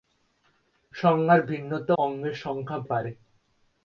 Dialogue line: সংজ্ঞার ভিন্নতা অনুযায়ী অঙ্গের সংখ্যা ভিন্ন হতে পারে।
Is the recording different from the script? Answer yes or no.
yes